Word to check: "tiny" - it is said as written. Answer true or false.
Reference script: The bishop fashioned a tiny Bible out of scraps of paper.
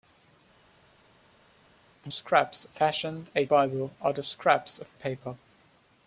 false